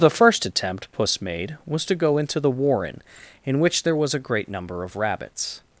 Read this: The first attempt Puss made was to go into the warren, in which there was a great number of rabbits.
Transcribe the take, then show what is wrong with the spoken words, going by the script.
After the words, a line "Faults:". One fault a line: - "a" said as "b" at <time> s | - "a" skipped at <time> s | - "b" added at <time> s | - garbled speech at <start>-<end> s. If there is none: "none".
The first attempt Puss made was to go into the warren, in which there was a great number of rabbits.
Faults:
none